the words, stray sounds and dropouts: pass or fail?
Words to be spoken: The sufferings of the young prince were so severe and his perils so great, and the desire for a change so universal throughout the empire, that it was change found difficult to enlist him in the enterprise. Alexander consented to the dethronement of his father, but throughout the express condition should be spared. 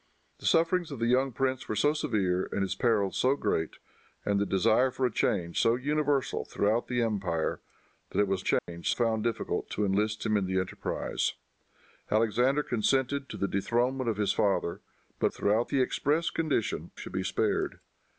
fail